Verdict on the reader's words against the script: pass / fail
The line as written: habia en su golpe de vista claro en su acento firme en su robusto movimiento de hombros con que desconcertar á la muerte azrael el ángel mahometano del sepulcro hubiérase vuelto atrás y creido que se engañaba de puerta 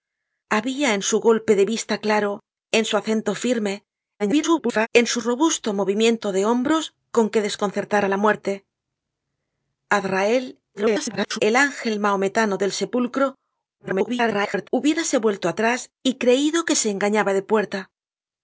fail